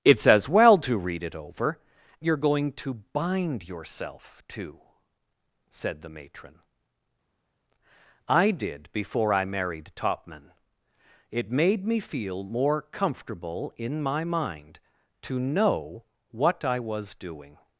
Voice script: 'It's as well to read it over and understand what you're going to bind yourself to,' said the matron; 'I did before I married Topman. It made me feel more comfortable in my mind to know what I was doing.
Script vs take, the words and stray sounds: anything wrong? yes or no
yes